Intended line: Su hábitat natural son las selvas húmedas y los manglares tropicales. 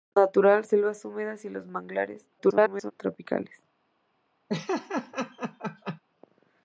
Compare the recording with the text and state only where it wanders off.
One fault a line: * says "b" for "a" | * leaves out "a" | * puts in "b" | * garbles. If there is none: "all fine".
* leaves out "son las"
* garbles